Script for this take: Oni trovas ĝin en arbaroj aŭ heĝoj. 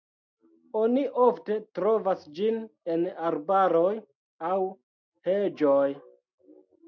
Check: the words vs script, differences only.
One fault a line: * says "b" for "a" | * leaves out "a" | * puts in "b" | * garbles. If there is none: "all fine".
* puts in "ofte"